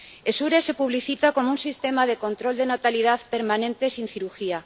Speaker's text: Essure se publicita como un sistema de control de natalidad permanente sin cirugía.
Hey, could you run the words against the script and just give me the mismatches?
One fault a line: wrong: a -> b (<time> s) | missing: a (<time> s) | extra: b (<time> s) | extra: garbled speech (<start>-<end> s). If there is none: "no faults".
no faults